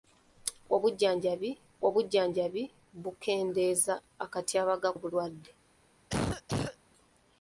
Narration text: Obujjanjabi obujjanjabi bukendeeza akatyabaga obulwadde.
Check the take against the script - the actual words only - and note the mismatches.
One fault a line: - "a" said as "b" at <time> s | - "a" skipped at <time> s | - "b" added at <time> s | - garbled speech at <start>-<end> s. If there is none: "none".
none